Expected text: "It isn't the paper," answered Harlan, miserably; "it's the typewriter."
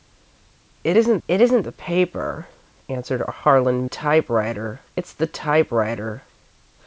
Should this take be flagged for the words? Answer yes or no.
yes